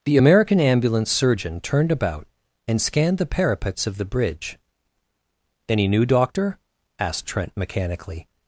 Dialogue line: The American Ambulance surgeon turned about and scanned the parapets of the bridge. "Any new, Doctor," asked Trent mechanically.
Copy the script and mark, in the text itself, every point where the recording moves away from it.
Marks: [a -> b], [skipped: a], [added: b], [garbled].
The American Ambulance surgeon turned about and scanned the parapets of the bridge. "Any new, Doctor," asked Trent mechanically.